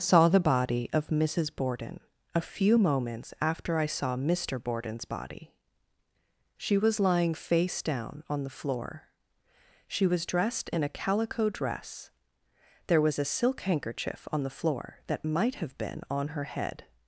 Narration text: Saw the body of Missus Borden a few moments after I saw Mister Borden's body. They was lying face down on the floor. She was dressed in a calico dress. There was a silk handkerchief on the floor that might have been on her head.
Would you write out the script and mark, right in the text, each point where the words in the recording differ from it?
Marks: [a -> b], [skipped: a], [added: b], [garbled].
Saw the body of Missus Borden a few moments after I saw Mister Borden's body. [They -> She] was lying face down on the floor. She was dressed in a calico dress. There was a silk handkerchief on the floor that might have been on her head.